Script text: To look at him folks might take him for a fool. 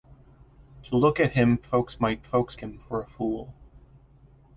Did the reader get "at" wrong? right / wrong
right